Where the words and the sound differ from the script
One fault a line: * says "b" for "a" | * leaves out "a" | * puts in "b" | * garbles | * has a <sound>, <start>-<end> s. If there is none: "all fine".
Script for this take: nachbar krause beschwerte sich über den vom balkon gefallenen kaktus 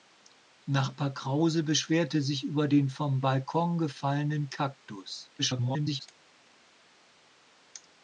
* garbles